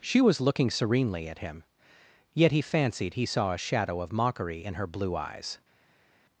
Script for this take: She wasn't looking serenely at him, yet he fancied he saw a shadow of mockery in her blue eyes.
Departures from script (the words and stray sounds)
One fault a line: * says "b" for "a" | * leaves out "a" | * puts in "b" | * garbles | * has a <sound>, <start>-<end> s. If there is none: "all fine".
* says "was" for "wasn't"